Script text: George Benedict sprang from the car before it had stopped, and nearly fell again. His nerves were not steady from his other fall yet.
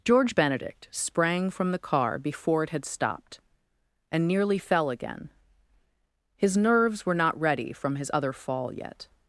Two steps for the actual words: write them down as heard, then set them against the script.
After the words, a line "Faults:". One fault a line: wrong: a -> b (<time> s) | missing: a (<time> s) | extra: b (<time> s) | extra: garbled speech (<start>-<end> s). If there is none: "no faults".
George Benedict sprang from the car before it had stopped, and nearly fell again. His nerves were not ready from his other fall yet.
Faults:
wrong: steady -> ready (7.4 s)